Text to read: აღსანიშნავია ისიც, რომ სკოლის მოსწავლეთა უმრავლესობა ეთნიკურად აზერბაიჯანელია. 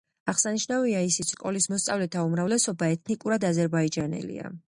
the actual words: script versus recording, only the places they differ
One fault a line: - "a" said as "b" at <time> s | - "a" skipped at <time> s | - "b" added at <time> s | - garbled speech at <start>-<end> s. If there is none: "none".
- "რომ" skipped at 1.3 s